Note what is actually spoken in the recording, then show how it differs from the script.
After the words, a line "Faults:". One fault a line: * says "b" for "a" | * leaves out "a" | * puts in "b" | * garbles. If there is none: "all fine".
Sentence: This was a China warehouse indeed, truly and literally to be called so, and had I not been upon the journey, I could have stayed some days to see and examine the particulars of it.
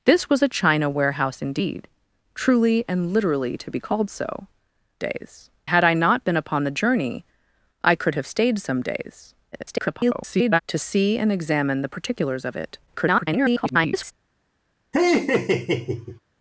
This was a China warehouse indeed, truly and literally to be called so, days had I not been upon the journey, I could have stayed some days [garbled] to see and examine the particulars of it. [garbled]
Faults:
* says "days" for "and"
* garbles
* garbles